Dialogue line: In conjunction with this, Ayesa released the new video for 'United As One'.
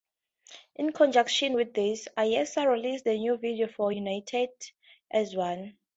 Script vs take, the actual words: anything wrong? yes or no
no